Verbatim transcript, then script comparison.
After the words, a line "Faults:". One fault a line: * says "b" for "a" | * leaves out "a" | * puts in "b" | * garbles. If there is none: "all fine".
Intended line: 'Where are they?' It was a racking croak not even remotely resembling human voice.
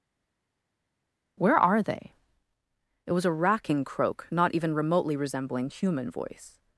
'Where are they?' It was a racking croak not even remotely resembling human voice.
Faults:
all fine